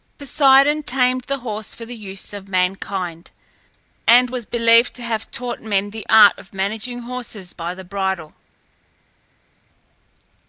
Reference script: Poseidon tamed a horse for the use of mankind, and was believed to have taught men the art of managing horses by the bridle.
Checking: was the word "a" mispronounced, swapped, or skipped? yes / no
yes